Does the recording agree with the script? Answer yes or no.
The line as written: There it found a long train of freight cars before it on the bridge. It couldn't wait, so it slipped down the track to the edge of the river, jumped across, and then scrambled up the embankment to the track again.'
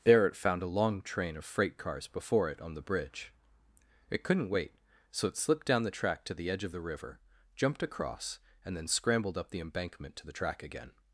yes